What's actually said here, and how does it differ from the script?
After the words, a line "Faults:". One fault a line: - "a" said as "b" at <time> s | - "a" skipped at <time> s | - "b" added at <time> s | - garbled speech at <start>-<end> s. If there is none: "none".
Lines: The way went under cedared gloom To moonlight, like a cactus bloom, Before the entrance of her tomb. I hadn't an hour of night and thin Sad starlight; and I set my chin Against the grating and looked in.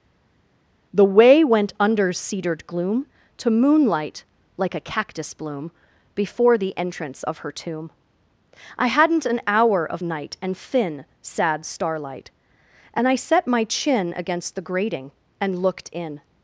The way went under cedared gloom To moonlight, like a cactus bloom, Before the entrance of her tomb. I hadn't an hour of night and thin Sad starlight; and I set my chin Against the grating and looked in.
Faults:
none